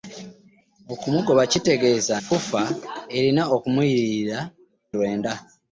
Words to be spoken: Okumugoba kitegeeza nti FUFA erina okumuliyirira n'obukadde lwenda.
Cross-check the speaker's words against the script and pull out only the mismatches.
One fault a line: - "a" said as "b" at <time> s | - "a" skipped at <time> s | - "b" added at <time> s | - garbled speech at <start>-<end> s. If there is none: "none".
- "nti" skipped at 2.1 s
- "n'obukadde" skipped at 4.4 s